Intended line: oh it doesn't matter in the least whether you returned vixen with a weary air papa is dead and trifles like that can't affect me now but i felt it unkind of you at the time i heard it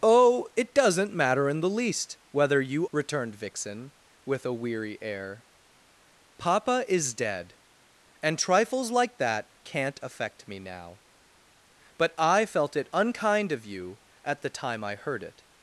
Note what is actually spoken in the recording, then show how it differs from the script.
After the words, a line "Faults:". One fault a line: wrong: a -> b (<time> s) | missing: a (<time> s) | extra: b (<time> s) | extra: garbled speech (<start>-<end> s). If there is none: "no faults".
oh it doesn't matter in the least whether you returned vixen with a weary air papa is dead and trifles like that can't affect me now but i felt it unkind of you at the time i heard it
Faults:
no faults